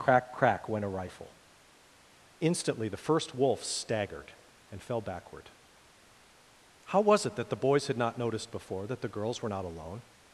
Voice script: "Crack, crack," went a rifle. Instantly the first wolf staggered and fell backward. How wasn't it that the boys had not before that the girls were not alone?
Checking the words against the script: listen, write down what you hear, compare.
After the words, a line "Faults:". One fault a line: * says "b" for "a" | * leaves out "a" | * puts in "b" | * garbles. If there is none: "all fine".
"Crack, crack," went a rifle. Instantly the first wolf staggered and fell backward. How was it that the boys had not noticed before that the girls were not alone?
Faults:
* says "was" for "wasn't"
* puts in "noticed"